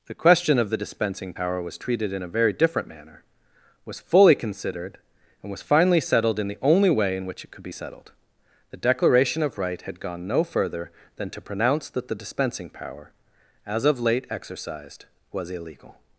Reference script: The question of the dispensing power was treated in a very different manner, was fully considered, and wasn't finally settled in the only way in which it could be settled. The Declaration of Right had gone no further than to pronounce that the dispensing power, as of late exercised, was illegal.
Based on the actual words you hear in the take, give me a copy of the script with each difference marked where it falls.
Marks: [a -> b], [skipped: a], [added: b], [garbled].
The question of the dispensing power was treated in a very different manner, was fully considered, and [wasn't -> was] finally settled in the only way in which it could be settled. The Declaration of Right had gone no further than to pronounce that the dispensing power, as of late exercised, was illegal.